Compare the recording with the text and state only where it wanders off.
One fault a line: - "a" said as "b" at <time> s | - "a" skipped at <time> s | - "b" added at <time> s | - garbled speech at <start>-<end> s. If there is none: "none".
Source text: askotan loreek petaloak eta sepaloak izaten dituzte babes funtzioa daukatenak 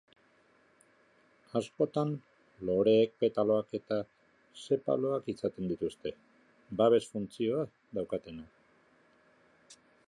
none